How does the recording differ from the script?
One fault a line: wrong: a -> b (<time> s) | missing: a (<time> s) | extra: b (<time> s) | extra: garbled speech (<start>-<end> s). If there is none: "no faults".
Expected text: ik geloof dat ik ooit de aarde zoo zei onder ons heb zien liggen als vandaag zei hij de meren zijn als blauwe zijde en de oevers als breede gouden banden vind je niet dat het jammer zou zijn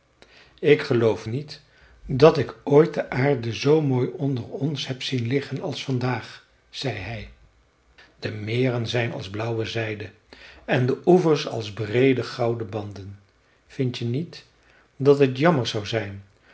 extra: niet (1.2 s)
wrong: zei -> mooi (3.8 s)